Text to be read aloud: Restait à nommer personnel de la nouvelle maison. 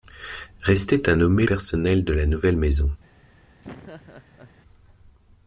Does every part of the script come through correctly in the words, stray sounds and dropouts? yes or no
no